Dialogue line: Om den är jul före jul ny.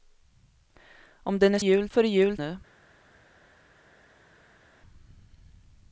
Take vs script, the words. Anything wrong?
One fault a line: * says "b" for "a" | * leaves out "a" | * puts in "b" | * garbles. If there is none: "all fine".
all fine